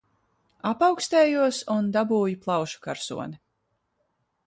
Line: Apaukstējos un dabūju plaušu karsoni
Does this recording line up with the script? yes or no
yes